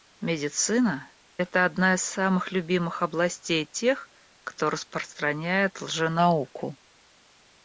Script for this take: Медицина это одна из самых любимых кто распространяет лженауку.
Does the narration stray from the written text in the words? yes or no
yes